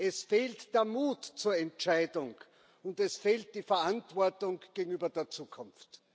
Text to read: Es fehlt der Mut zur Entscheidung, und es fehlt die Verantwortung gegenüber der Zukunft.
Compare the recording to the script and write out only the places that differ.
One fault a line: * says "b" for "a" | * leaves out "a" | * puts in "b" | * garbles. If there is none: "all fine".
all fine